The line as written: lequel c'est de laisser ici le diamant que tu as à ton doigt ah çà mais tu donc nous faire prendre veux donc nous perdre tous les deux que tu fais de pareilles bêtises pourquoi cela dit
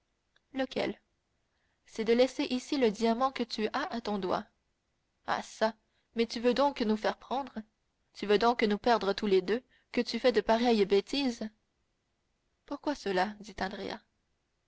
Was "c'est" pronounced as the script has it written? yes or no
yes